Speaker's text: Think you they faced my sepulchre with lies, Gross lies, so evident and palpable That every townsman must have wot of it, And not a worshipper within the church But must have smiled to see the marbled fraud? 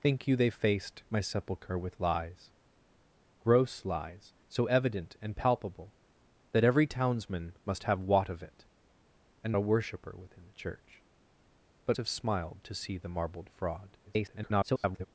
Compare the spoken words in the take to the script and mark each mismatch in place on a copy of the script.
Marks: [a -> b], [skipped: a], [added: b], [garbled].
Think you they faced my sepulchre with lies, Gross lies, so evident and palpable That every townsman must have wot of it, And [skipped: not] a worshipper within the church But [skipped: must] have smiled to see the marbled fraud? [garbled]